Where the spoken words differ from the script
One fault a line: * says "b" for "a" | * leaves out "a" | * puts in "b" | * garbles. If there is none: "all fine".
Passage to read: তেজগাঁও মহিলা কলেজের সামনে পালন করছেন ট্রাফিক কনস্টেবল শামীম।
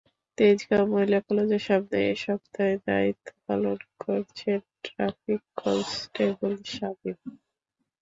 * puts in "এ সপ্তাহে দায়িত্ব"